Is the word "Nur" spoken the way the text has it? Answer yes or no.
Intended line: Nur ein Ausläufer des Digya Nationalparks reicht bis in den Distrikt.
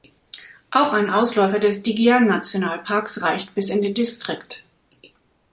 no